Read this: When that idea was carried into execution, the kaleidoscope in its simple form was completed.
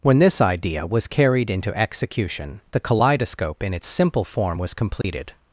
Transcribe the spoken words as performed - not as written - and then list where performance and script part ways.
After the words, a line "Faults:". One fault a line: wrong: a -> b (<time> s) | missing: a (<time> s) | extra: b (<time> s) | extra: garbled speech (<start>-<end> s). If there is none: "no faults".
When this idea was carried into execution, the kaleidoscope in its simple form was completed.
Faults:
wrong: that -> this (0.2 s)